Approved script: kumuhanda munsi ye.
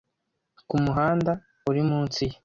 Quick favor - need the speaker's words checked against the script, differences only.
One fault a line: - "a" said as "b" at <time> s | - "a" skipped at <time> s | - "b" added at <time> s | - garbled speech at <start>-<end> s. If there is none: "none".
- "uri" added at 1.7 s